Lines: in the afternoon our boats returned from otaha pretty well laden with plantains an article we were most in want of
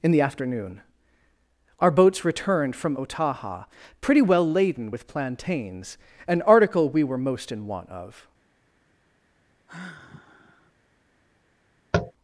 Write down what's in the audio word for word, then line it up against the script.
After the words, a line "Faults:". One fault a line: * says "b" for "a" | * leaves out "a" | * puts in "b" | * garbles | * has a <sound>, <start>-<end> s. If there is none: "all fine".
in the afternoon our boats returned from otaha pretty well laden with plantains an article we were most in want of
Faults:
* has a sigh, 9.7-10.7 s
* has a tap, 11.9-12.1 s